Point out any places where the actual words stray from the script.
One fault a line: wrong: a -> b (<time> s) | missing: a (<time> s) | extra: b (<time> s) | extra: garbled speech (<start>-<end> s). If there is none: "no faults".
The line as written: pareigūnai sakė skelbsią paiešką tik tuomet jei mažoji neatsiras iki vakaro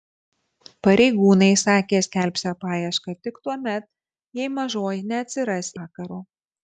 missing: iki (5.7 s)